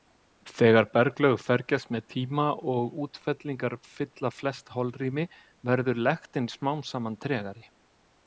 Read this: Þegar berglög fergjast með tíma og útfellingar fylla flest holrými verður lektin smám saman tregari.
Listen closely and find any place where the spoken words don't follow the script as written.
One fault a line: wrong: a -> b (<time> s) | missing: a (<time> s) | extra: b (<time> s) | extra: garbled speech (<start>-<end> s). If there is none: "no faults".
no faults